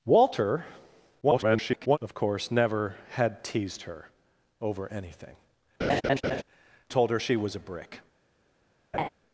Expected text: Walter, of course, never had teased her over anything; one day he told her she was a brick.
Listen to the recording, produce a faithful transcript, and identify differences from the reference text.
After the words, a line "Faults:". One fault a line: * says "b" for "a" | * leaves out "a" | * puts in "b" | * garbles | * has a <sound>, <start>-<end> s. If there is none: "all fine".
Walter, [garbled] of course, never had teased her over anything; told her she was a brick.
Faults:
* garbles
* leaves out "one day he"
* has a laugh, 5.8-6.4 s
* has a laugh, 8.9-9.1 s